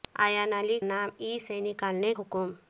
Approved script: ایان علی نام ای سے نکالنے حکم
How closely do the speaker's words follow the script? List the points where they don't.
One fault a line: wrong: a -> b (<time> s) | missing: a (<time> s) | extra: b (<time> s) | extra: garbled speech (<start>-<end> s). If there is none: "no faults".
no faults